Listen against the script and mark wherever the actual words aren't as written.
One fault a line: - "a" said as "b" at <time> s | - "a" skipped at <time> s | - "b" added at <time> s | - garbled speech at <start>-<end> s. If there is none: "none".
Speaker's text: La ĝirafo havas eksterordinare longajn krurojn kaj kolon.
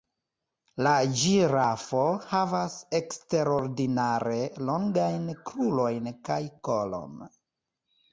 none